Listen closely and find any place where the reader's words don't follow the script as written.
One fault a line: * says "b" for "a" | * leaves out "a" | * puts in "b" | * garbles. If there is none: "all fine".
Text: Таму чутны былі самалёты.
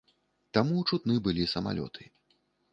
all fine